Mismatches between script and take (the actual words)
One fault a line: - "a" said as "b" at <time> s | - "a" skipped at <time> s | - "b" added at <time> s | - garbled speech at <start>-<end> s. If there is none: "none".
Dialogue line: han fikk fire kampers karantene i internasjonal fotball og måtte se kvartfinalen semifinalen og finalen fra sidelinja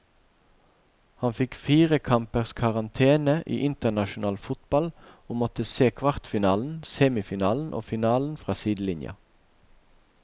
none